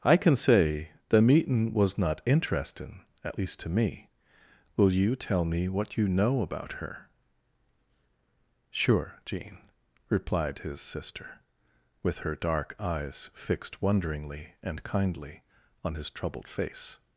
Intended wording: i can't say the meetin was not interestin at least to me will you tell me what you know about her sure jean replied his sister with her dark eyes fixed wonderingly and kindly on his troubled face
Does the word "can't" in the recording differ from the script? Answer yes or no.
yes